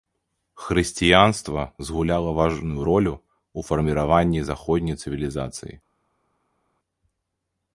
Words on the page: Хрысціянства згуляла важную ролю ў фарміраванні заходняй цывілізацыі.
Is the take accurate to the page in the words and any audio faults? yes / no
yes